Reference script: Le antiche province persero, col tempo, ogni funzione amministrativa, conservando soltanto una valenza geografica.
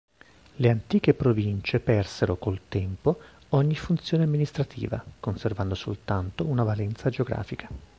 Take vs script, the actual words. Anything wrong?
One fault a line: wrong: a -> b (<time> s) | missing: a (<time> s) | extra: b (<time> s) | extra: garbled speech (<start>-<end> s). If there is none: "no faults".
no faults